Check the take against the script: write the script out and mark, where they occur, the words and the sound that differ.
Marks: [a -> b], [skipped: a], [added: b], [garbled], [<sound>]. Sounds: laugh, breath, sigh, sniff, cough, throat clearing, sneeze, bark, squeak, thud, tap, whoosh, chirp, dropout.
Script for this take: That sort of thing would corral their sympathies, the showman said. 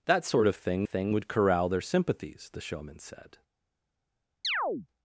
That sort of thing [added: thing] would corral their sympathies, the showman said. [chirp]